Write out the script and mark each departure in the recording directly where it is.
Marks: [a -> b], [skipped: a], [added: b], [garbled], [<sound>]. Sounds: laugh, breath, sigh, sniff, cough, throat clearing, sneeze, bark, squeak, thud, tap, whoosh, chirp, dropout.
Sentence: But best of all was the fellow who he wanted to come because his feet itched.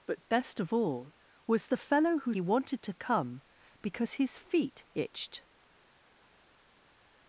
But best of all was the fellow who he wanted to come because his feet itched.